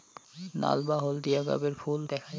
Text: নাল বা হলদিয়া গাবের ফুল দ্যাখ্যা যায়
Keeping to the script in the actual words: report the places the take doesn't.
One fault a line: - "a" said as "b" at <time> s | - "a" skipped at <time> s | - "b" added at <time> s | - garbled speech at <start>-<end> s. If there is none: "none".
none